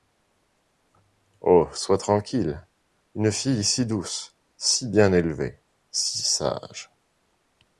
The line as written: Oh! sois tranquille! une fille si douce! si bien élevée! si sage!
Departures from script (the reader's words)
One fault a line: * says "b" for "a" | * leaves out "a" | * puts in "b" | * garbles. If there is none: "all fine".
all fine